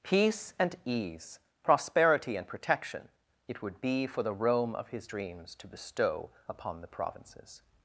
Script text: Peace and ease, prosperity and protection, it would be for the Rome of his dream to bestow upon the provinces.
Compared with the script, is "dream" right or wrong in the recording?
wrong